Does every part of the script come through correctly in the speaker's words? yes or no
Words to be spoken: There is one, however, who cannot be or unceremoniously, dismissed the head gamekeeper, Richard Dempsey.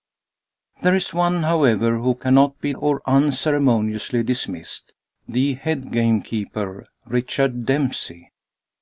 yes